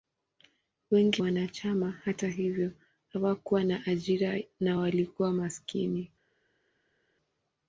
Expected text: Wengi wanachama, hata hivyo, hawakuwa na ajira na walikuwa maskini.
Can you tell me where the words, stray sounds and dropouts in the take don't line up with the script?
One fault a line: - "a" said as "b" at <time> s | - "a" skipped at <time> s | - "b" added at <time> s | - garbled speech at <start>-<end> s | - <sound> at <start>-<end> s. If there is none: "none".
none